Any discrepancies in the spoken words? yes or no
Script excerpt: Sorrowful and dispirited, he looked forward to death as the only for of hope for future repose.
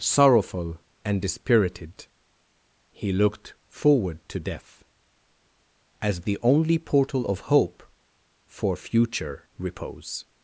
yes